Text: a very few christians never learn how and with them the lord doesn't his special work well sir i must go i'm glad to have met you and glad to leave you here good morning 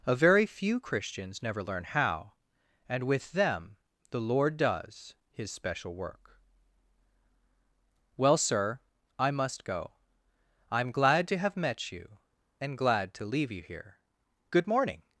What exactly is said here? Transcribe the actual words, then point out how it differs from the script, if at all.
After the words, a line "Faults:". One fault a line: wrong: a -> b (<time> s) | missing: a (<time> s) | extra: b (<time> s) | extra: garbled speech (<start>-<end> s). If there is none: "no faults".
a very few christians never learn how and with them the lord does his special work well sir i must go i'm glad to have met you and glad to leave you here good morning
Faults:
wrong: doesn't -> does (4.6 s)